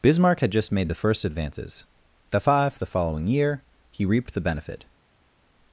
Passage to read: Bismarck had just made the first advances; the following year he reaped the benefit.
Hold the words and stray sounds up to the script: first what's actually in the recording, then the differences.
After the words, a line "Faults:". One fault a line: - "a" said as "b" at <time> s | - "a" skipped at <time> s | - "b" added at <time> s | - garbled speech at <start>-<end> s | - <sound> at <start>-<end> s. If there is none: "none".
Bismarck had just made the first advances; the five the following year he reaped the benefit.
Faults:
- "five the" added at 2.4 s